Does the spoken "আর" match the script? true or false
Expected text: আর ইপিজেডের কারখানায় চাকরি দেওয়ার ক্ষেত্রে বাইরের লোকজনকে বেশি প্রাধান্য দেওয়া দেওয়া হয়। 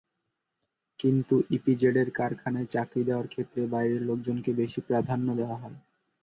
false